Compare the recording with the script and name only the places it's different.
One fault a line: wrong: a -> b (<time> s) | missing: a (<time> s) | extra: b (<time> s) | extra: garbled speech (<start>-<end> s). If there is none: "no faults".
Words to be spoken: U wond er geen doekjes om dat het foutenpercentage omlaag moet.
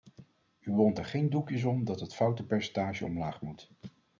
no faults